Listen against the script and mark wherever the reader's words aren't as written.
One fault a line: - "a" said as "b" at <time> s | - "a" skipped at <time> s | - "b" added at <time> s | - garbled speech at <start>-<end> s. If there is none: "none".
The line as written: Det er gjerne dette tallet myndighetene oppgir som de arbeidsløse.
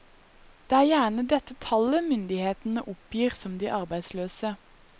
none